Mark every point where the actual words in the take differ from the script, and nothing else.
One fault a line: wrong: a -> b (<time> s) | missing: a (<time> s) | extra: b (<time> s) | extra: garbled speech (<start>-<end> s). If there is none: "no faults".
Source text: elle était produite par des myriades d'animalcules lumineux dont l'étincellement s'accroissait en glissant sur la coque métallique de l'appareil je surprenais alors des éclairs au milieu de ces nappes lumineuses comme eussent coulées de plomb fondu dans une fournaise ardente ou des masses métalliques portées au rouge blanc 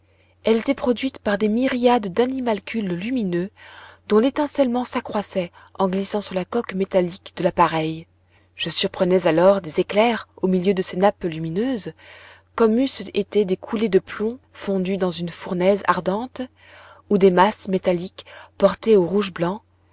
extra: été des (13.1 s)